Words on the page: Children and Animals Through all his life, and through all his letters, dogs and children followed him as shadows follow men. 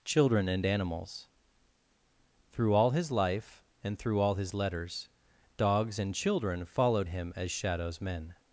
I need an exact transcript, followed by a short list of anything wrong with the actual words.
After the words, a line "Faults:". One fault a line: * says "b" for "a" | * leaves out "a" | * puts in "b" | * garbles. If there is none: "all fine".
Children and Animals Through all his life, and through all his letters, dogs and children followed him as shadows men.
Faults:
* leaves out "follow"